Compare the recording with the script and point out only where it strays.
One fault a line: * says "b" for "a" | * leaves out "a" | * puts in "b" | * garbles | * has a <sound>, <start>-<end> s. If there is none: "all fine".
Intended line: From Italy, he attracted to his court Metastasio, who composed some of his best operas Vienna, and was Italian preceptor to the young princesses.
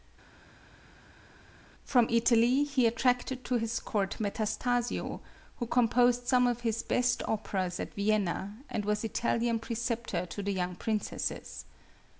* puts in "at"